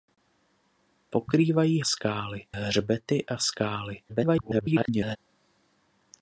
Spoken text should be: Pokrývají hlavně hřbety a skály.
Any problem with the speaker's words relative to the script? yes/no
yes